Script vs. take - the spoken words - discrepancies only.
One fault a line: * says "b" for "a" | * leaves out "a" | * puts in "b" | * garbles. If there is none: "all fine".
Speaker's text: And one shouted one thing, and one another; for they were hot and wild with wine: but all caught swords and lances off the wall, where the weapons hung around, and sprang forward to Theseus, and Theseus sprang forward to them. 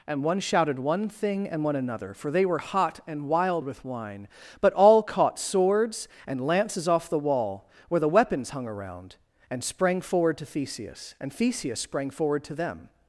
all fine